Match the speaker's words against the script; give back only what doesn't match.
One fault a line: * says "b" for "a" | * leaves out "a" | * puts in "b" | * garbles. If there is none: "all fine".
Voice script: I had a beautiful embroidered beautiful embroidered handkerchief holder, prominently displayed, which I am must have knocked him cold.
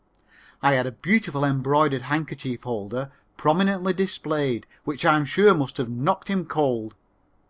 * leaves out "beautiful embroidered"
* puts in "sure"